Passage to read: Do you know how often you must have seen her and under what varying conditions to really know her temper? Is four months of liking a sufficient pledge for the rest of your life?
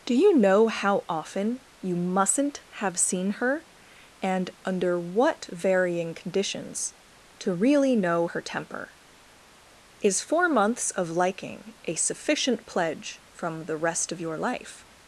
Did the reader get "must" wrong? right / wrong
wrong